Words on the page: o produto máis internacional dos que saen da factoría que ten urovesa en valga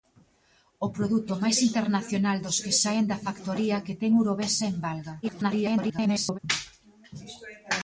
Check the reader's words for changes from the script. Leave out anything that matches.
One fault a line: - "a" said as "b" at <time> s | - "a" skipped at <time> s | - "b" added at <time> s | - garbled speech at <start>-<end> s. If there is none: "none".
- garbled speech at 5.2-6.4 s